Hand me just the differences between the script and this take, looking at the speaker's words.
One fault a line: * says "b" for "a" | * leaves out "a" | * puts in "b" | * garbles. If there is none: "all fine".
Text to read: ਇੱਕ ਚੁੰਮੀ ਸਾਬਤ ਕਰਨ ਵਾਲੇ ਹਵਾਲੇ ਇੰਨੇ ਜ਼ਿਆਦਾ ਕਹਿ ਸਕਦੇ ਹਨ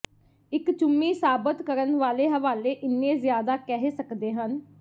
all fine